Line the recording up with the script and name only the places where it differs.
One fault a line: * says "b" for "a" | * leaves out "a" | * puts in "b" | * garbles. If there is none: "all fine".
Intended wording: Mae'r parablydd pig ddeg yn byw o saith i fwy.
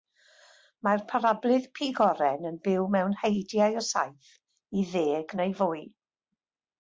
* says "oren" for "ddeg"
* puts in "mewn heidiau"
* puts in "ddeg neu"